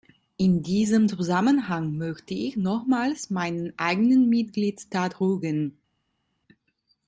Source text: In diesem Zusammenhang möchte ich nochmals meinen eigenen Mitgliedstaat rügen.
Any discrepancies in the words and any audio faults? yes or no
no